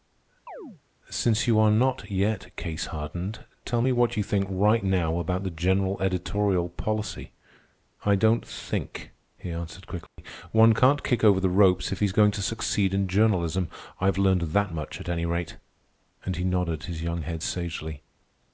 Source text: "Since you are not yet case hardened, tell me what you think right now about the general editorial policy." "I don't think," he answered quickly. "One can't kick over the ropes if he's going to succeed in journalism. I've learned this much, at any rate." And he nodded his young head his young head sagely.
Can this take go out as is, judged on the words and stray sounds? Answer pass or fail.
fail